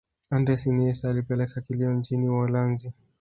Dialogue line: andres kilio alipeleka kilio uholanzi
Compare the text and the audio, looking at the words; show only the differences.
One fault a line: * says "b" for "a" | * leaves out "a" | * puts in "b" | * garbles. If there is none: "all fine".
* says "iniesta" for "kilio"
* puts in "nchini"